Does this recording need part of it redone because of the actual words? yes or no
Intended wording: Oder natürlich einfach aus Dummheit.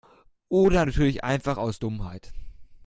no